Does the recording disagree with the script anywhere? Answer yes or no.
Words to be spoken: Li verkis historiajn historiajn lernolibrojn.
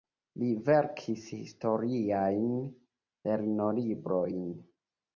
yes